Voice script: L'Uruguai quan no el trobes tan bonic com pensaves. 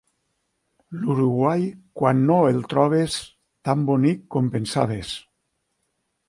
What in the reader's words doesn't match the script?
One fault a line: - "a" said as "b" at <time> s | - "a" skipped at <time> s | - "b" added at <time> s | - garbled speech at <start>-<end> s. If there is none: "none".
none